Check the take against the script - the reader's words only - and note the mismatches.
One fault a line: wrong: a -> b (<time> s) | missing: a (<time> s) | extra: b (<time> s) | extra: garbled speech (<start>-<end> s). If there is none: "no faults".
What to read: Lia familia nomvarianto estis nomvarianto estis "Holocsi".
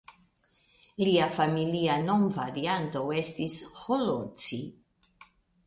missing: nomvarianto estis (3.6 s)